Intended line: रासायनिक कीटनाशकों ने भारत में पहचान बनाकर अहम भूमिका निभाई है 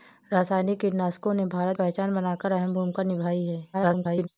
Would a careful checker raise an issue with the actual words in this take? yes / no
yes